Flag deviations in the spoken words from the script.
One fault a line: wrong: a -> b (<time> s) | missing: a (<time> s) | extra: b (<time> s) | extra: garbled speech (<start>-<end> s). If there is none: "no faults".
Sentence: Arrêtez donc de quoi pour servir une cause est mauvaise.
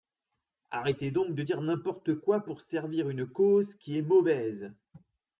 extra: dire n'importe (1.4 s)
extra: qui (3.8 s)